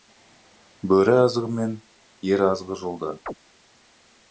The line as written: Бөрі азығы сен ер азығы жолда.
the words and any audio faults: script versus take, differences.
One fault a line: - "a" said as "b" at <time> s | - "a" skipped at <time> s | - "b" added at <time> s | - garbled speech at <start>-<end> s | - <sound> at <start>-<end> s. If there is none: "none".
- "сен" said as "мен" at 1.6 s
- chirp at 3.3-3.3 s